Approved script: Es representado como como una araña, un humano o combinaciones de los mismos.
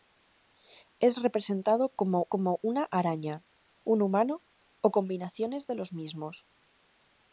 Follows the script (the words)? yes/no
yes